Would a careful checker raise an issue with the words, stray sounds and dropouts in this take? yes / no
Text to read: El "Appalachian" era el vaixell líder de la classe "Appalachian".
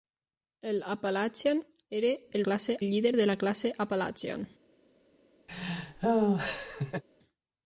yes